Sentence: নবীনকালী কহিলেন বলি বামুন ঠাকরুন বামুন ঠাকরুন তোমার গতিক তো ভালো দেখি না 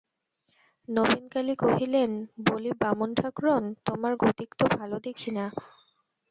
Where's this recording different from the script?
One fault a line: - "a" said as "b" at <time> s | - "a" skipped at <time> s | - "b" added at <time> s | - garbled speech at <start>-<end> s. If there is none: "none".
- "বামুন ঠাকরুন" skipped at 3.6 s